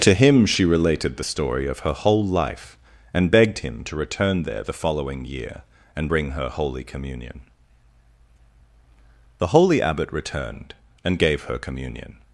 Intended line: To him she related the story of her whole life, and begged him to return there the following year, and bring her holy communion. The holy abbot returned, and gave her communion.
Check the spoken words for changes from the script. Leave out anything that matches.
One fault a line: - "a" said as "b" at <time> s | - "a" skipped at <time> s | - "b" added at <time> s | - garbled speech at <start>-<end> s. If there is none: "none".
none